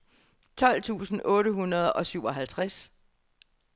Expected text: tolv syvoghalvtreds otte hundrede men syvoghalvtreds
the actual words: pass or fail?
fail